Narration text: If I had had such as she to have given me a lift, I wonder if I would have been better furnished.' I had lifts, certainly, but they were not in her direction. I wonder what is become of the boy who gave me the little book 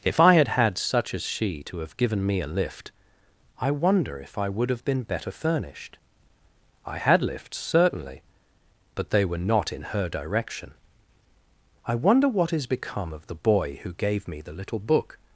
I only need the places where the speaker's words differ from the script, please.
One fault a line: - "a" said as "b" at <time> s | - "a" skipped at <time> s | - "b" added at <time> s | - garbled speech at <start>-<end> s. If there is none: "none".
none